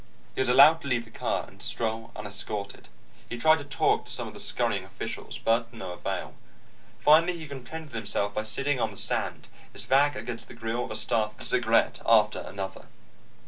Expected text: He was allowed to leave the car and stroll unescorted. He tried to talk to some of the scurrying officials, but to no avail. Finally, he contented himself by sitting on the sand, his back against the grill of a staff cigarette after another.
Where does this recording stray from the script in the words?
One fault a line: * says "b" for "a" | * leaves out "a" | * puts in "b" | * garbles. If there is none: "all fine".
all fine